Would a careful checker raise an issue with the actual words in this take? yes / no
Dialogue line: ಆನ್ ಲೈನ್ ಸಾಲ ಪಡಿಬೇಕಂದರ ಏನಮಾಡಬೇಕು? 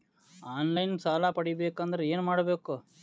no